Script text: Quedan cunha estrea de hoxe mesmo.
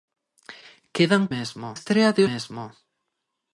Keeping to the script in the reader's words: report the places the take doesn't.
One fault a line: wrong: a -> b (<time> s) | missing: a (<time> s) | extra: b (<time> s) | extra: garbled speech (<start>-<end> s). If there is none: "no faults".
wrong: cunha -> mesmo (1.3 s)
missing: hoxe (2.2 s)